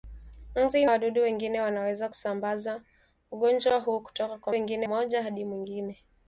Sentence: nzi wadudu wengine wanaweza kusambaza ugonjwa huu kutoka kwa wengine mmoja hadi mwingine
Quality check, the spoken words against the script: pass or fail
pass